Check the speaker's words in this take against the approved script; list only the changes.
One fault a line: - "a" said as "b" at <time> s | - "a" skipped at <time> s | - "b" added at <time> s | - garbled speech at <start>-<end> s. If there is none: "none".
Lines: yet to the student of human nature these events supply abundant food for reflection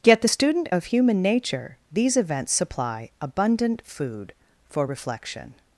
- "to" skipped at 0.2 s